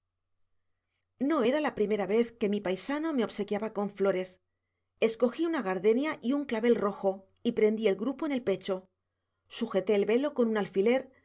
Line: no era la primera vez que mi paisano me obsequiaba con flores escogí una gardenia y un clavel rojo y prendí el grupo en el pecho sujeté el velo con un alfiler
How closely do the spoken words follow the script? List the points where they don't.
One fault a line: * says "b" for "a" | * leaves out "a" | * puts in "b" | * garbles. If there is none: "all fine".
all fine